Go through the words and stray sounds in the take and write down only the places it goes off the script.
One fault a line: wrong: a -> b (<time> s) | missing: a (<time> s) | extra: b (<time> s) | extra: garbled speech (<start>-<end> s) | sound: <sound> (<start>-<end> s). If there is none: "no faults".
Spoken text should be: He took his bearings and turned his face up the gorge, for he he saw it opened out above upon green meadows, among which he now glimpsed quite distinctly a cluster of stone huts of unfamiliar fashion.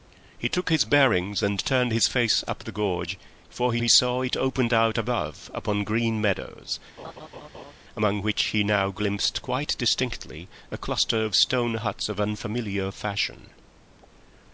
sound: laugh (7.0-7.7 s)